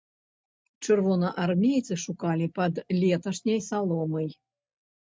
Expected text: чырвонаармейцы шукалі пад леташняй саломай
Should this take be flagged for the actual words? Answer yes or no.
no